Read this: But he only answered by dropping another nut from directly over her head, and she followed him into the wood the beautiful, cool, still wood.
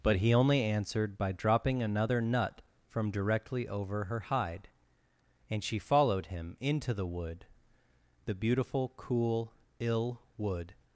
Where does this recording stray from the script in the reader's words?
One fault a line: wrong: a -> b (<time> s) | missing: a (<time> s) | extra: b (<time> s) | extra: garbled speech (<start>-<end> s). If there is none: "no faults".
wrong: head -> hide (4.2 s)
wrong: still -> ill (9.8 s)